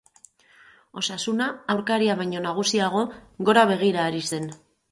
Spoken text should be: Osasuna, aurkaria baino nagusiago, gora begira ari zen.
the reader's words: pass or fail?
pass